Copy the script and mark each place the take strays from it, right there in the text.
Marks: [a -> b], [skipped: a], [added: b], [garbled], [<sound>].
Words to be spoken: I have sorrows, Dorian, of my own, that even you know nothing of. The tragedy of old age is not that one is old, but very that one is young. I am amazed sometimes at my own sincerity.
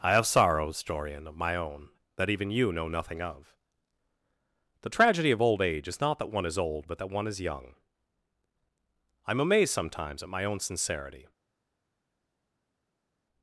I have sorrows, Dorian, of my own, that even you know nothing of. The tragedy of old age is not that one is old, but [skipped: very] that one is young. I am amazed sometimes at my own sincerity.